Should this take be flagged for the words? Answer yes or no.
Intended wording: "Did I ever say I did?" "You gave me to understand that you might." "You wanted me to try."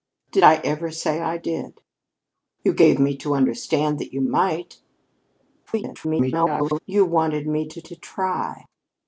yes